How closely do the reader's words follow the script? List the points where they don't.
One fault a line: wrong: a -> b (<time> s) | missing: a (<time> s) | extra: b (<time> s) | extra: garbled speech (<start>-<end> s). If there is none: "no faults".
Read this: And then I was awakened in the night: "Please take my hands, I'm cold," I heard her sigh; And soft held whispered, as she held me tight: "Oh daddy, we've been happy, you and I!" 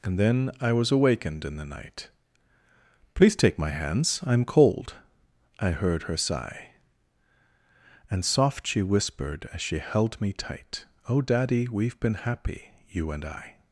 wrong: held -> she (8.7 s)